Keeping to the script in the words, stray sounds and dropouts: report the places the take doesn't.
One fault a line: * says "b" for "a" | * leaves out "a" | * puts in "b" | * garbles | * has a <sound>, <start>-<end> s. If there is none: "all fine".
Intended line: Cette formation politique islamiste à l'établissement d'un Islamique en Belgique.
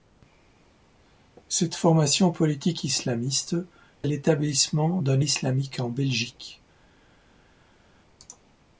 all fine